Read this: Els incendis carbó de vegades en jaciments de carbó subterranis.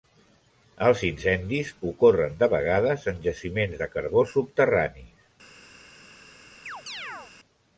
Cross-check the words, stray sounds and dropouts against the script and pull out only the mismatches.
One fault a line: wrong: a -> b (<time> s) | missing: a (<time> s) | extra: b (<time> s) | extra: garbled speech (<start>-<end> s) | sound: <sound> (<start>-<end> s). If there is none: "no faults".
wrong: carbó -> ocorren (1.9 s)
sound: chirp (6.7-7.3 s)